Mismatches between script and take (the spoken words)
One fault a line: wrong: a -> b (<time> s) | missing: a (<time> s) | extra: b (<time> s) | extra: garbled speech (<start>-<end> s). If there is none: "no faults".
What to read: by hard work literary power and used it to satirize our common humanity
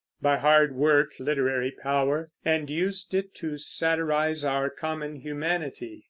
no faults